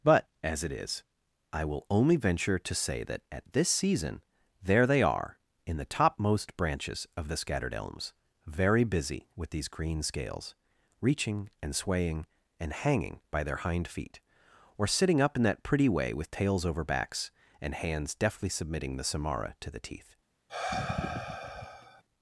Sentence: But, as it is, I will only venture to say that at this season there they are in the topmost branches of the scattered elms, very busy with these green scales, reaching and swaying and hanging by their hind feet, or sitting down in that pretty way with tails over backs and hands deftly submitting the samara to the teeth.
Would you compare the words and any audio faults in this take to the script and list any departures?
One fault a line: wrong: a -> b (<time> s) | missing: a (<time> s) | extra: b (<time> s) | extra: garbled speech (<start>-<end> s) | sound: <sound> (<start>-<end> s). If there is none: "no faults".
wrong: down -> up (15.2 s)
sound: sigh (20.5-22.0 s)